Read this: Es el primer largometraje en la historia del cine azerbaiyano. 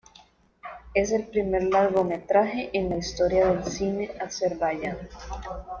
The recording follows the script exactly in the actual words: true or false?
true